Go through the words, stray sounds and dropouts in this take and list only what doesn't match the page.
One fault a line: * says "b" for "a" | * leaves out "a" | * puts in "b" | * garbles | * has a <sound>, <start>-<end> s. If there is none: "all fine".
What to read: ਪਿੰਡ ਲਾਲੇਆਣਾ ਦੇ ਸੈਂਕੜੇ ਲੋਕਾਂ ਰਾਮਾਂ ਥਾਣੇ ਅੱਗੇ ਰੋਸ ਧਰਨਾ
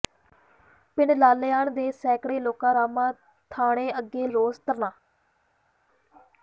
all fine